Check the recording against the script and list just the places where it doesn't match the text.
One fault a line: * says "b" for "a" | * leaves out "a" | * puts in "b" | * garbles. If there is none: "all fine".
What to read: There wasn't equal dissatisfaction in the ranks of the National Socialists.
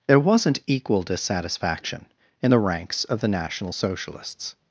all fine